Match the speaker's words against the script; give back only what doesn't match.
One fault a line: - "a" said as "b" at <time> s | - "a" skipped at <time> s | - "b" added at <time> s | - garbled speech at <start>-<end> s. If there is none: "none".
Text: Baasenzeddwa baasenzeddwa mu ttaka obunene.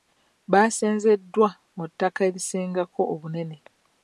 - "baasenzeddwa" skipped at 1.5 s
- "erisingako" added at 2.3 s